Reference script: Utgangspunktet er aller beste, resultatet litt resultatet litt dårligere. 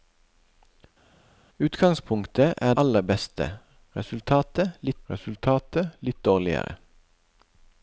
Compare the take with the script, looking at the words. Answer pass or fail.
pass